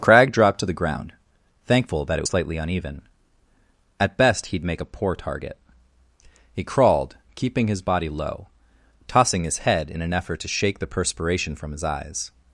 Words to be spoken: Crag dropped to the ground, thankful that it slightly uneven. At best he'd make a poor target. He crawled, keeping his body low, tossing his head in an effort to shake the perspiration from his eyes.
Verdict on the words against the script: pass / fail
pass